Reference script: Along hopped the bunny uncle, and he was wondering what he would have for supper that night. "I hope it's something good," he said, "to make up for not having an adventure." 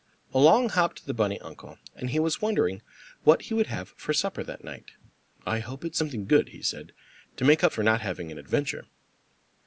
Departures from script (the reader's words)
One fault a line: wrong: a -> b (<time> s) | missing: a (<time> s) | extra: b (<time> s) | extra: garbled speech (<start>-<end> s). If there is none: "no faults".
no faults